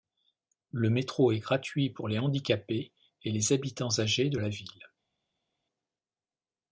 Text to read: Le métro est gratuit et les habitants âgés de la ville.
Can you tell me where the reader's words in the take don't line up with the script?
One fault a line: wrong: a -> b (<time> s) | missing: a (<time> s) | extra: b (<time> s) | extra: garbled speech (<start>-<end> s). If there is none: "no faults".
extra: pour les handicapés (1.9 s)